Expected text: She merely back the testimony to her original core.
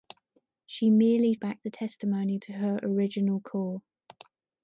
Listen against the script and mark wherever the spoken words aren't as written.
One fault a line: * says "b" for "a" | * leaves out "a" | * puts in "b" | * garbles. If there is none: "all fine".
all fine